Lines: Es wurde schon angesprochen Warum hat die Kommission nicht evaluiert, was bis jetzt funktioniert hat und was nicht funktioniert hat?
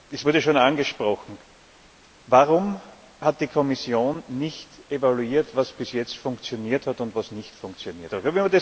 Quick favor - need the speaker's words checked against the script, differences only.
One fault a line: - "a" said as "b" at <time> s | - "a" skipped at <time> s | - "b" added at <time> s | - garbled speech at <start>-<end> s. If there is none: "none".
none